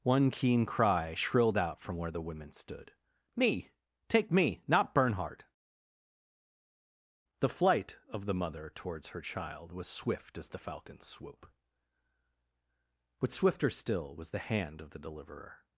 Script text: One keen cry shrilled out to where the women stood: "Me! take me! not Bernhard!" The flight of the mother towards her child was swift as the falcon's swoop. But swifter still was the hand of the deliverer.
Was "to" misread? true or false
true